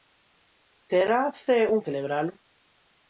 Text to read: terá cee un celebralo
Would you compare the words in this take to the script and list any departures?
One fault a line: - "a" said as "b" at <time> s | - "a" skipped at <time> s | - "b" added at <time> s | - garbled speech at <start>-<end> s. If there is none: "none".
none